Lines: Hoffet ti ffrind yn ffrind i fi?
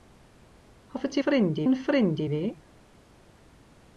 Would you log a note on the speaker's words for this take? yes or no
no